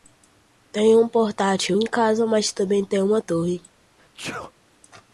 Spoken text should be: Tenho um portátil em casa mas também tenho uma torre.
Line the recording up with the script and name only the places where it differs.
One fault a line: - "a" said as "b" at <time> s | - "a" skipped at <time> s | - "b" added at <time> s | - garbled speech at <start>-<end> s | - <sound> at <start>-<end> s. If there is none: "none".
- sneeze at 4.0-4.5 s